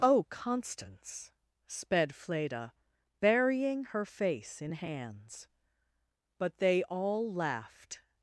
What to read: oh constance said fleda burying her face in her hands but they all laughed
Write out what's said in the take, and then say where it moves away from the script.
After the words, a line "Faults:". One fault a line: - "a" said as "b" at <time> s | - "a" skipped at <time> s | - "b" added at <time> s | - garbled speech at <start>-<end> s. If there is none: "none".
oh constance sped fleda burying her face in hands but they all laughed
Faults:
- "said" said as "sped" at 1.7 s
- "her" skipped at 4.7 s